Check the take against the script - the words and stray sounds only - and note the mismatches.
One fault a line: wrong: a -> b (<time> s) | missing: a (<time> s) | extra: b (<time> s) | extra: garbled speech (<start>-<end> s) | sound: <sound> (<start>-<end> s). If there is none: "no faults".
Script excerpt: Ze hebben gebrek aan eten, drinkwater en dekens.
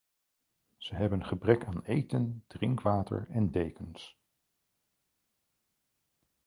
no faults